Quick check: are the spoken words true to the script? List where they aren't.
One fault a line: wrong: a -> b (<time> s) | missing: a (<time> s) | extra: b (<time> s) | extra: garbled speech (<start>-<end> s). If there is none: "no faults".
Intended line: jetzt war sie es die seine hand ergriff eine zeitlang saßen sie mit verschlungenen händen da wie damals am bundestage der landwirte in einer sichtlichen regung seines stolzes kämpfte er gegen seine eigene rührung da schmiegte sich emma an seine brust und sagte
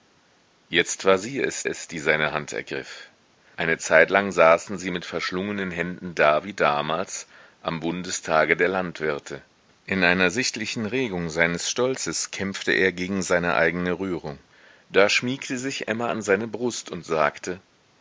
extra: es (1.6 s)